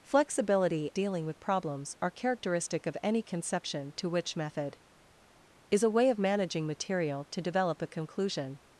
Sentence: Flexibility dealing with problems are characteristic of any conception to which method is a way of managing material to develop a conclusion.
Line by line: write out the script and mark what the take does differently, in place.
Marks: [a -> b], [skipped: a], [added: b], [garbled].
Flexibility dealing with problems are characteristic of any conception to which method is a way of managing material to develop a conclusion.